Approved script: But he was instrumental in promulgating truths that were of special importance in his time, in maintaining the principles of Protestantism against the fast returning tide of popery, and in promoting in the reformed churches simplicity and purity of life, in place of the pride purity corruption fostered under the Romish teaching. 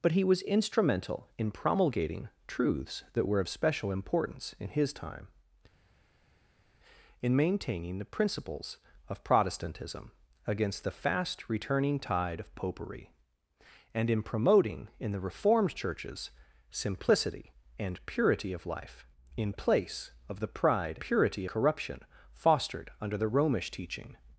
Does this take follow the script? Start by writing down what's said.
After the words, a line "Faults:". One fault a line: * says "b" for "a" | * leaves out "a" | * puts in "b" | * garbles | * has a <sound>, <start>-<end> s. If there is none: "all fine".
But he was instrumental in promulgating truths that were of special importance in his time, in maintaining the principles of Protestantism against the fast returning tide of popery, and in promoting in the reformed churches simplicity and purity of life, in place of the pride purity corruption fostered under the Romish teaching.
Faults:
all fine